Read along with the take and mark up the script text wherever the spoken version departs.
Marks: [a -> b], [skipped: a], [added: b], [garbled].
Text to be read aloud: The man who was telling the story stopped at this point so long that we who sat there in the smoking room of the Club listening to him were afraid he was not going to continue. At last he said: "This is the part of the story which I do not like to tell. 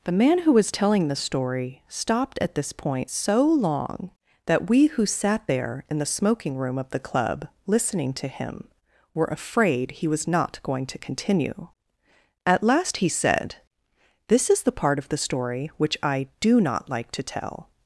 The man who was telling the story stopped at this point so long that we who sat there in the smoking room of the Club listening to him were afraid he was not going to continue. At last he said: "This is the part of the story which I do not like to tell.